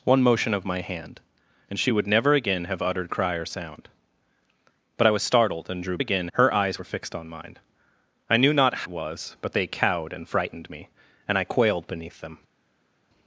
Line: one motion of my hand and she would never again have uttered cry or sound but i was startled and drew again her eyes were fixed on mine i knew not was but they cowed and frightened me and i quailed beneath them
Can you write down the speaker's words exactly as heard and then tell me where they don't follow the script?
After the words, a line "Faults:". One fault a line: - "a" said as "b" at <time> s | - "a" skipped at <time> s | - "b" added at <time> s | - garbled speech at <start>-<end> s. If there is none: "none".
one motion of my hand and she would never again have uttered cry or sound but i was startled and drew again her eyes were fixed on mine i knew not was but they cowed and frightened me and i quailed beneath them
Faults:
none